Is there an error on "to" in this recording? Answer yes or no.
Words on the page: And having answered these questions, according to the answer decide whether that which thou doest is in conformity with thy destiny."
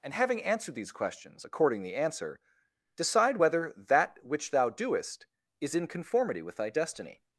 yes